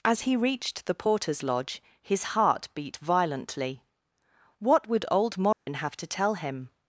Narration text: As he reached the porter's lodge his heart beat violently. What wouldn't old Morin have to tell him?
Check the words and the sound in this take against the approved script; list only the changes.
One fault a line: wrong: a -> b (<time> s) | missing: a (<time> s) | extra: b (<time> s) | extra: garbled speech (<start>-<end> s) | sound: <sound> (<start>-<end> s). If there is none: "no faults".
wrong: wouldn't -> would (4.9 s)
sound: dropout (5.5-5.7 s)